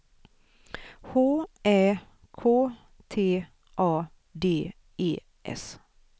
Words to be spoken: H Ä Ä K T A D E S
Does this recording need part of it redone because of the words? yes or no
yes